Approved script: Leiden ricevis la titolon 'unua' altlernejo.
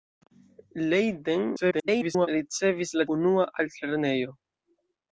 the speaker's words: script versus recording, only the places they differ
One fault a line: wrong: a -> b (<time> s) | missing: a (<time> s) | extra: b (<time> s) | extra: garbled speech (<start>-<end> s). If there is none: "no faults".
extra: garbled speech (1.6-2.3 s)
missing: titolon (3.1 s)